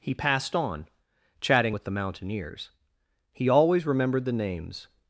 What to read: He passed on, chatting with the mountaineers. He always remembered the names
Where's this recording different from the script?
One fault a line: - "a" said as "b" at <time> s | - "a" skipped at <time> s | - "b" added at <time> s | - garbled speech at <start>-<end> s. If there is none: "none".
none